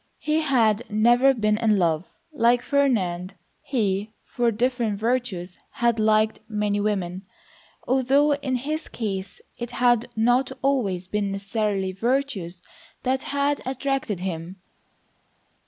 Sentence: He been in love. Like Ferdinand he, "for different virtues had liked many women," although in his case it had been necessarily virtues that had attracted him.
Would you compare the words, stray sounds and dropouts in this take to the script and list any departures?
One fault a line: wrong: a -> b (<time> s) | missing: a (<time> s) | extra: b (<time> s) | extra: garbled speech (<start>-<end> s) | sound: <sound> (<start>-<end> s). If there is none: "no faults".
extra: had never (0.4 s)
extra: not always (10.2 s)